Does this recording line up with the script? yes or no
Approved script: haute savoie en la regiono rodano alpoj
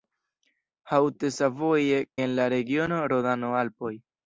yes